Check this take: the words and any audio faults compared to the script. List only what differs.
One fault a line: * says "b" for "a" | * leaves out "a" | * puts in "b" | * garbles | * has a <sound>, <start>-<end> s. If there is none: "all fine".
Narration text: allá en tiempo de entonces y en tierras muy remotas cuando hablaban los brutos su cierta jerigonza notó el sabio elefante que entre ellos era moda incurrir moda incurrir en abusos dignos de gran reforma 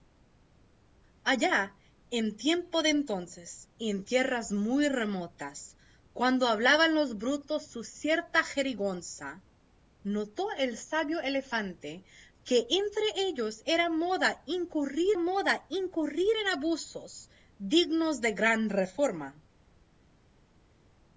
all fine